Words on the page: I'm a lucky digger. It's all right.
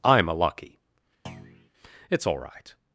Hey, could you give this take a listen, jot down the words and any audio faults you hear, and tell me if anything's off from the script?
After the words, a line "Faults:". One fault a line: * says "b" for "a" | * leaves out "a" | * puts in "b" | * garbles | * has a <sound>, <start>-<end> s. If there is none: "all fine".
I'm a lucky. It's all right.
Faults:
* leaves out "digger"
* has a thud, 1.3-1.7 s